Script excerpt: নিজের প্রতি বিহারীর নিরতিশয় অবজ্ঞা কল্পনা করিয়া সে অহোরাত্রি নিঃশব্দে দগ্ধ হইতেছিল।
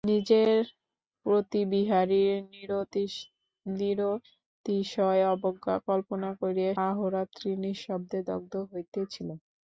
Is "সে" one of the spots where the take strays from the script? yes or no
yes